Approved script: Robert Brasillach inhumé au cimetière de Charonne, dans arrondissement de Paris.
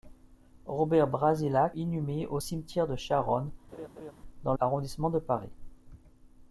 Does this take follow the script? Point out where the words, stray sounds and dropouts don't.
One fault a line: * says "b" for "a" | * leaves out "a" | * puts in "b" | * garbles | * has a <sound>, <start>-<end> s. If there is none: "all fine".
* has a laugh, 3.7-4.1 s